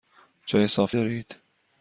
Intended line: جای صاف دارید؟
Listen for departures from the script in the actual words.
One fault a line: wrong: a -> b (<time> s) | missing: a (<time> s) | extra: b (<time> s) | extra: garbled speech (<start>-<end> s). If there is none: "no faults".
no faults